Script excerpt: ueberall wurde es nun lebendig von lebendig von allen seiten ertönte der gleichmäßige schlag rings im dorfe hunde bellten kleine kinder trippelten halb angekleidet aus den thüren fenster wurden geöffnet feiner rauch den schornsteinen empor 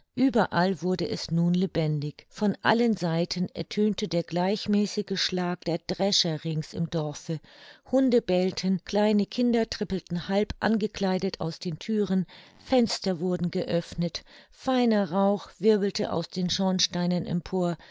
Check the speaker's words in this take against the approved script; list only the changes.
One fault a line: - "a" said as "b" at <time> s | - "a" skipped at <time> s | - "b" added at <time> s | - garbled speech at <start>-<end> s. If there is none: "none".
- "lebendig von" skipped at 2.6 s
- "der drescher" added at 5.7 s
- "wirbelte aus" added at 15.6 s